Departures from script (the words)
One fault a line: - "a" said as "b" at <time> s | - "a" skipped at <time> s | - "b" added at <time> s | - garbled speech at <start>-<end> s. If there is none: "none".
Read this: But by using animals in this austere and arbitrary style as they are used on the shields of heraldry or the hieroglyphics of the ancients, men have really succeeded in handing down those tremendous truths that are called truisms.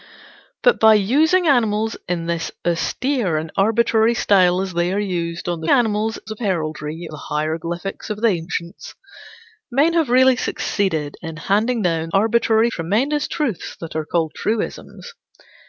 - "shields" said as "animals" at 5.7 s
- "or" skipped at 7.1 s
- "those" said as "arbitrary" at 12.1 s